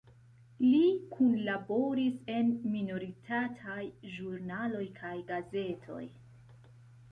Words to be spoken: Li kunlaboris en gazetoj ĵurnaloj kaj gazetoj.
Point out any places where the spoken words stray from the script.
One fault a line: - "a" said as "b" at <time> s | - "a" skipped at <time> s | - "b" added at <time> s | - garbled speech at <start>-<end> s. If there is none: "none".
- "gazetoj" said as "minoritataj" at 2.8 s